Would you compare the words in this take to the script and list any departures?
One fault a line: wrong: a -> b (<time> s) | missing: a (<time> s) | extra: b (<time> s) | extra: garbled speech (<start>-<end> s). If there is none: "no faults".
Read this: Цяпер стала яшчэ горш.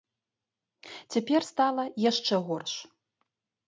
no faults